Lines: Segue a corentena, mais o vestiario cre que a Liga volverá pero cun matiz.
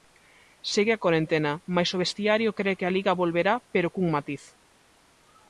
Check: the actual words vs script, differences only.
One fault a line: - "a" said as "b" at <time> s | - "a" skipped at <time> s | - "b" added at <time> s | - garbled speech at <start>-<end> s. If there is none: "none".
none